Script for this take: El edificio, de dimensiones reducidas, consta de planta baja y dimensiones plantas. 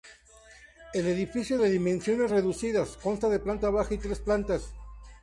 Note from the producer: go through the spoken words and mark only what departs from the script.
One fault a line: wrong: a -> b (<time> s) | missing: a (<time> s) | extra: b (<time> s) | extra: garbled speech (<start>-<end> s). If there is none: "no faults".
wrong: dimensiones -> tres (4.0 s)